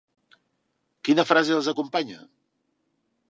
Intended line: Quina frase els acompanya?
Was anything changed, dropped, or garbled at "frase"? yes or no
no